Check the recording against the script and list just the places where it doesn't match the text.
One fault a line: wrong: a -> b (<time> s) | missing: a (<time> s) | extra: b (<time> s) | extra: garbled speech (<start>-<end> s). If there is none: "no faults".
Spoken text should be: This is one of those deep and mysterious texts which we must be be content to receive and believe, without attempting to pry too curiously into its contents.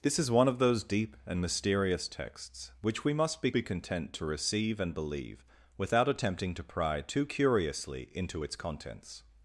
no faults